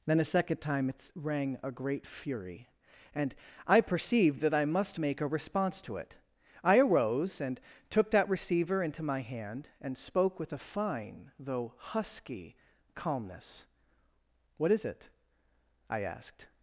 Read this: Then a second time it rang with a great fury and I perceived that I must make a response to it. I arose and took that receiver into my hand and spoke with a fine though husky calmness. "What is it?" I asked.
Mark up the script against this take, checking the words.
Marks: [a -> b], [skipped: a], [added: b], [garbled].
Then a second time it rang [skipped: with] a great fury and I perceived that I must make a response to it. I arose and took that receiver into my hand and spoke with a fine though husky calmness. "What is it?" I asked.